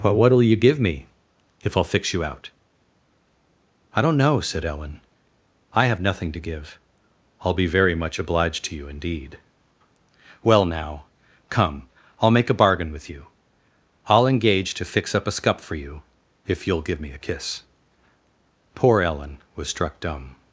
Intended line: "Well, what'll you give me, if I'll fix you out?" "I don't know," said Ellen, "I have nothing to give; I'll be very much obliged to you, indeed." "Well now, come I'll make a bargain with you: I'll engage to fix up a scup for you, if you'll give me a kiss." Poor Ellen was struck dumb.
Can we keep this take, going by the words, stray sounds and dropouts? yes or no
no